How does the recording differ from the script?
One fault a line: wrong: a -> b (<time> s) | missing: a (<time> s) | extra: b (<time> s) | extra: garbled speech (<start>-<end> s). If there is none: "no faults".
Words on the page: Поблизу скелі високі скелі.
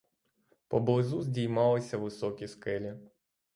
wrong: скелі -> здіймалися (1.2 s)